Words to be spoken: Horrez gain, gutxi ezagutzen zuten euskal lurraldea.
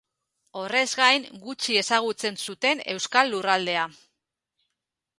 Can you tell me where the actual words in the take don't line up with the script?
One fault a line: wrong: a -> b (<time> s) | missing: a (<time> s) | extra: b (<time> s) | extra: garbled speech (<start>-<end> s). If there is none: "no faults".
no faults